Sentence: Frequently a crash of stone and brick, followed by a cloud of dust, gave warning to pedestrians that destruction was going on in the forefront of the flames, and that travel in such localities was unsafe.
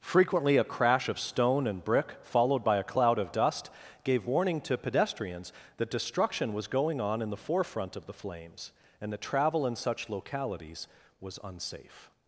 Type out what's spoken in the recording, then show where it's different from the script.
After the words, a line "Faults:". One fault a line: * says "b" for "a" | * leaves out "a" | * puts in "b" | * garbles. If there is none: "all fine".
Frequently a crash of stone and brick, followed by a cloud of dust, gave warning to pedestrians that destruction was going on in the forefront of the flames, and that travel in such localities was unsafe.
Faults:
all fine